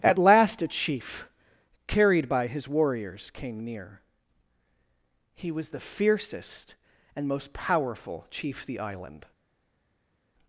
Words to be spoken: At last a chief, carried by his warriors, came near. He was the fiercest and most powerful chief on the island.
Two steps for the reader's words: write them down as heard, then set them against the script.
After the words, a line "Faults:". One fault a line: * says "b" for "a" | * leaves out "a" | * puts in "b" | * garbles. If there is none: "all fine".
At last a chief, carried by his warriors, came near. He was the fiercest and most powerful chief the island.
Faults:
* leaves out "on"